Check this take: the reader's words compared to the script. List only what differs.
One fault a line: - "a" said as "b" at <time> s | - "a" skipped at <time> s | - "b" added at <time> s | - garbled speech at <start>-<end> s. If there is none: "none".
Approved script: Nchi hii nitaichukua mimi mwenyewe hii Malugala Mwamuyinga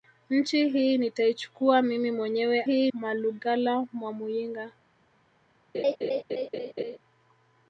none